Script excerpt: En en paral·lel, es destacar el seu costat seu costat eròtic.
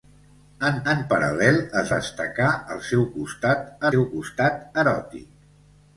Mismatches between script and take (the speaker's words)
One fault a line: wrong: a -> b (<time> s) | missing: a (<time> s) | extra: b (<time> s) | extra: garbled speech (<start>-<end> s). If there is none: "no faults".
no faults